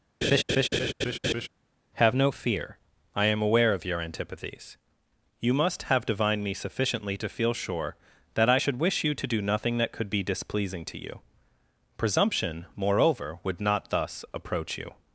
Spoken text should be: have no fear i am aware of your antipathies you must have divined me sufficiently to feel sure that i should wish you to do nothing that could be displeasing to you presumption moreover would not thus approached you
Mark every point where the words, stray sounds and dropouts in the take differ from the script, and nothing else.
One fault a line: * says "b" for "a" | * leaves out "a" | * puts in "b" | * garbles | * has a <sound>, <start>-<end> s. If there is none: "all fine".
* has a laugh, 0.2-1.5 s
* says "approach" for "approached"